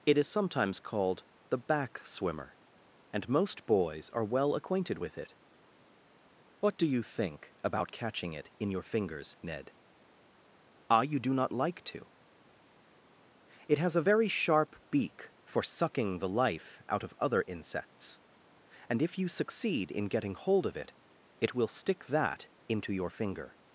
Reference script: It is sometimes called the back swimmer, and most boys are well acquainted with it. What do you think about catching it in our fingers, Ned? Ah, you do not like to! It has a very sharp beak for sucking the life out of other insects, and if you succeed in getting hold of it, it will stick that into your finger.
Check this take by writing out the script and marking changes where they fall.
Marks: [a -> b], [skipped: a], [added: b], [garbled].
It is sometimes called the back swimmer, and most boys are well acquainted with it. What do you think about catching it in [our -> your] fingers, Ned? Ah, you do not like to! It has a very sharp beak for sucking the life out of other insects, and if you succeed in getting hold of it, it will stick that into your finger.